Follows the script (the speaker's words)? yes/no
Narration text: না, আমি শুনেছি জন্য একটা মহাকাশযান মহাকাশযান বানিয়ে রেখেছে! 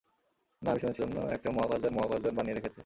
yes